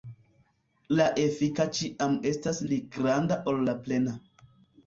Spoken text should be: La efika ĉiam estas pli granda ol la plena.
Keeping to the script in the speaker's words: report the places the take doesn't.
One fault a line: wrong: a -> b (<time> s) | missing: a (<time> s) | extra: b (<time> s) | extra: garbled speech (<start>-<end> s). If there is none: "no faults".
no faults